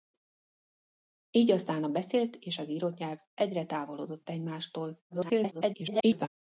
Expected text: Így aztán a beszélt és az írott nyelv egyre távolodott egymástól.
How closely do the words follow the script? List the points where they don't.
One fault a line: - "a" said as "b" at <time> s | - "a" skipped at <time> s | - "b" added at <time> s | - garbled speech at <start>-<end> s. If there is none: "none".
- garbled speech at 5.1-6.3 s